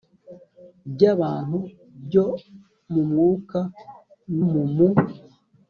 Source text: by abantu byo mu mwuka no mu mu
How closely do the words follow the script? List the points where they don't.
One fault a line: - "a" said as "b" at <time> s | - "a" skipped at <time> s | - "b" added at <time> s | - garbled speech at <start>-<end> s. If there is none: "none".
- "no" skipped at 3.6 s